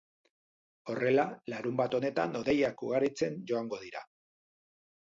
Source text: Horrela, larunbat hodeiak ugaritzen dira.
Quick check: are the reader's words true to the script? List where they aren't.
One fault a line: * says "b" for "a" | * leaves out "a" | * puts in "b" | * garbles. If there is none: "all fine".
* puts in "honetan"
* puts in "joango"